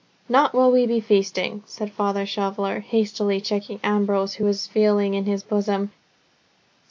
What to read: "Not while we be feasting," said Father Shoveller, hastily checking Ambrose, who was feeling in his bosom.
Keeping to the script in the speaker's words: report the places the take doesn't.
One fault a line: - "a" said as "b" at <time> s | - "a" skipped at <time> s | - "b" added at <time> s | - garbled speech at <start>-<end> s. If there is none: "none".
none